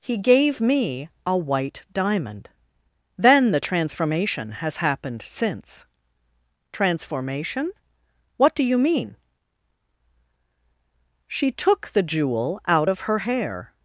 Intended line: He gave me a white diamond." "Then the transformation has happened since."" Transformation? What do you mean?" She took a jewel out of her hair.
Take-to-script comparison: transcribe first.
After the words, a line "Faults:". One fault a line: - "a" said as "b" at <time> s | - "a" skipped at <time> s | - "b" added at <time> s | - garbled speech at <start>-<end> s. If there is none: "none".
He gave me a white diamond." "Then the transformation has happened since."" Transformation? What do you mean?" She took the jewel out of her hair.
Faults:
- "a" said as "the" at 11.9 s